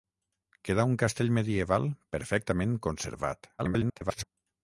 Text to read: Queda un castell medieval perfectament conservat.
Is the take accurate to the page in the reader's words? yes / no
no